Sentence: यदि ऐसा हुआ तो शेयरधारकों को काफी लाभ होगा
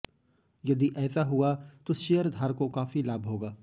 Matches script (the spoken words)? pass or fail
fail